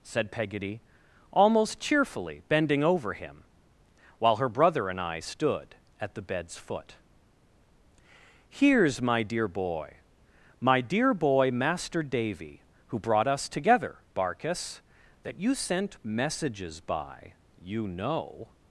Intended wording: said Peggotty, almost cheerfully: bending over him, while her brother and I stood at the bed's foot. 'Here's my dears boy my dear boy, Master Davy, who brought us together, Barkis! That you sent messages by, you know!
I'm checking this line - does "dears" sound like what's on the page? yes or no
no